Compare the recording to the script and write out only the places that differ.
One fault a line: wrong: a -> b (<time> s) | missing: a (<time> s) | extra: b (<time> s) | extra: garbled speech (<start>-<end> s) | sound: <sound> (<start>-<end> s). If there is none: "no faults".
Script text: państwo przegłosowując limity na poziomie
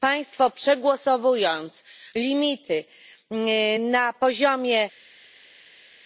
no faults